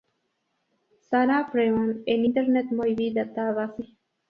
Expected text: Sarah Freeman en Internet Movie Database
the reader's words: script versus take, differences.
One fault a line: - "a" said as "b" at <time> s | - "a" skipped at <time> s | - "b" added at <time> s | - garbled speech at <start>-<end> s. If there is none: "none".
none